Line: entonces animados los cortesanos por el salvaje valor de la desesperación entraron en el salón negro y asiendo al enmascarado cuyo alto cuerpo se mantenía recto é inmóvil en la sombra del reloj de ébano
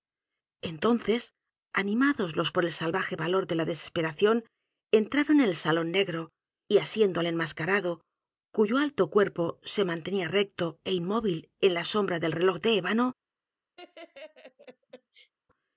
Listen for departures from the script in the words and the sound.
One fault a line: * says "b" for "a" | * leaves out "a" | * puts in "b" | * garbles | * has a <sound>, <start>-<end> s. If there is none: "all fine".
* leaves out "cortesanos"
* has a laugh, 13.8-15.3 s